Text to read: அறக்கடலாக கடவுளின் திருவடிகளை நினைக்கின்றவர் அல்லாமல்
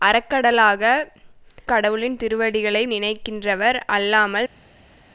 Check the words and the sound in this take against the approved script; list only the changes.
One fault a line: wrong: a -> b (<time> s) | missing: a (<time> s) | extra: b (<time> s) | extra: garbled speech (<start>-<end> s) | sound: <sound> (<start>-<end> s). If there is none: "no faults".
no faults